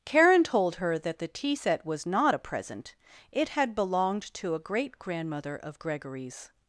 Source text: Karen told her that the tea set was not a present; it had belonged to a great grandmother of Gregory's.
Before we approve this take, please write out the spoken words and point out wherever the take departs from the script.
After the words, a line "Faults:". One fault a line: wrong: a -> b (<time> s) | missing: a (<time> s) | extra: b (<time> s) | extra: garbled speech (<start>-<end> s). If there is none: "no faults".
Karen told her that the tea set was not a present; it had belonged to a great grandmother of Gregory's.
Faults:
no faults